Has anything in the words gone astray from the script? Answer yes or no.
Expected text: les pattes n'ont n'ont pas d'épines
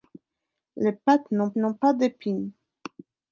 no